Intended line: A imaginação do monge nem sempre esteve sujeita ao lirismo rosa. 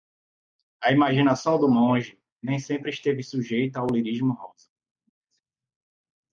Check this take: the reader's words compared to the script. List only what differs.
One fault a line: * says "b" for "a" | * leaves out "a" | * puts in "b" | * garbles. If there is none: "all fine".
all fine